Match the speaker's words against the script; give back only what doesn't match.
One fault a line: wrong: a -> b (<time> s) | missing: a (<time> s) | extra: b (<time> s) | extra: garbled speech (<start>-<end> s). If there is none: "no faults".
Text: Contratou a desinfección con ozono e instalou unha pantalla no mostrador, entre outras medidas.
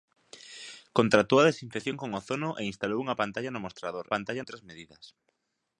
wrong: entre -> pantalla (4.1 s)